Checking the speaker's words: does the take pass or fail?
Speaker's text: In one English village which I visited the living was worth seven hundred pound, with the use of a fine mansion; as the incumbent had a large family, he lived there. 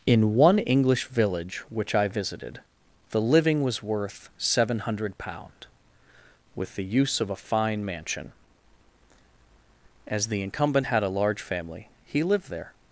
pass